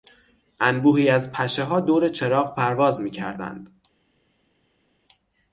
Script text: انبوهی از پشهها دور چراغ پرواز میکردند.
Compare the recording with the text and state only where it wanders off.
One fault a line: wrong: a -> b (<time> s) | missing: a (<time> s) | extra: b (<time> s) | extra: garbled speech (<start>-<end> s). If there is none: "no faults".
no faults